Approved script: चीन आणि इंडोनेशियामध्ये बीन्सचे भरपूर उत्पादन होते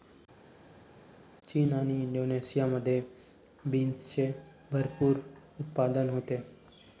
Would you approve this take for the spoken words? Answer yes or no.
yes